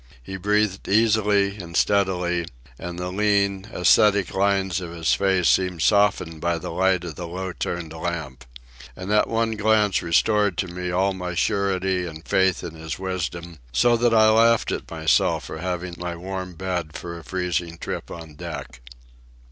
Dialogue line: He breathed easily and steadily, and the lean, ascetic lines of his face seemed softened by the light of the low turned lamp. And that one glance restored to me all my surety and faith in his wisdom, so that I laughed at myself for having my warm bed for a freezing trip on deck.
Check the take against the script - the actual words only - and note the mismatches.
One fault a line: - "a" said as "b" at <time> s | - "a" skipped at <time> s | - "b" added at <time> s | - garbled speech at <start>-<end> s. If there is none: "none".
none